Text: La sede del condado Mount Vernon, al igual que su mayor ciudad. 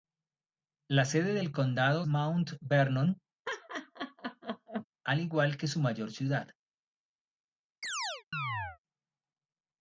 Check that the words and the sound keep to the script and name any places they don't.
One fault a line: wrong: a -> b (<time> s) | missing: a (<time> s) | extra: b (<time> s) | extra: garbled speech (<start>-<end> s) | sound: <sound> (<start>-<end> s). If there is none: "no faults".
sound: laugh (3.5-4.9 s)
sound: chirp (7.8-8.8 s)